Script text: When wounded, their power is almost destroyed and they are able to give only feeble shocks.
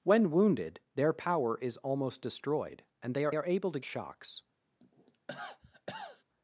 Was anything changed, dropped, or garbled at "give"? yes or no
yes